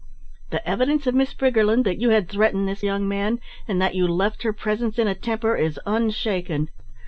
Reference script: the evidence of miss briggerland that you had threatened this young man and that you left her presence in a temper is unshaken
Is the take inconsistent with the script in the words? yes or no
no